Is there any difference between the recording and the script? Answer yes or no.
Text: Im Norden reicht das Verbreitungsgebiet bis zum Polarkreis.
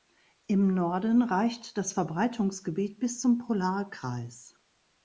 no